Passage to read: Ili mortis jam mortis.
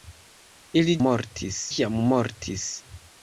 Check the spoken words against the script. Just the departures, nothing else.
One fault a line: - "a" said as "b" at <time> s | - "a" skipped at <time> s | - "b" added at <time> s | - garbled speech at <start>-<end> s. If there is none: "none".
none